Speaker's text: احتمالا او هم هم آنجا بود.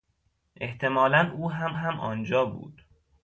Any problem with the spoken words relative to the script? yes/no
no